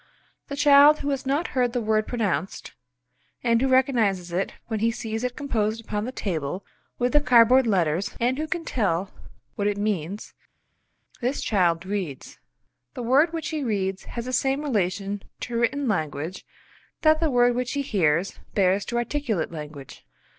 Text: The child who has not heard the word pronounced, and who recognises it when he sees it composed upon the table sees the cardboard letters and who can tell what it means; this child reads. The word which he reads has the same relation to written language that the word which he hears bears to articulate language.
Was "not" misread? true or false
false